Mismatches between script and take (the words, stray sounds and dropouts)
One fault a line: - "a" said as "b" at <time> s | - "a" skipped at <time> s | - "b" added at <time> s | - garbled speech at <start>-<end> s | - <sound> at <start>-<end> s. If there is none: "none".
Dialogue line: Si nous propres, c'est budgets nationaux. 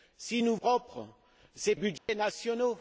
- dropout at 2.0-2.1 s